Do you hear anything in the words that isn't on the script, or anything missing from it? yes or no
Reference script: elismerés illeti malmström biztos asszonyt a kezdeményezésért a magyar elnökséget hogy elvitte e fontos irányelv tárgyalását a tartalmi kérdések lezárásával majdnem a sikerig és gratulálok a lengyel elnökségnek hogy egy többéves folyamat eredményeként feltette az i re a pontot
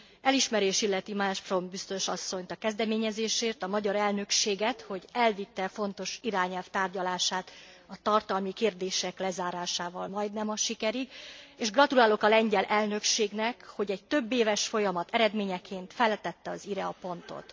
no